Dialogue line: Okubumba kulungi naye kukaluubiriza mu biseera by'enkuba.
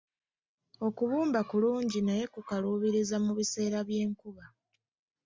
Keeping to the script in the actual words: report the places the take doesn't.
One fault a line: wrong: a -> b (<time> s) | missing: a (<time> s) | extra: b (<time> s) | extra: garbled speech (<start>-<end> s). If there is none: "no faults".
no faults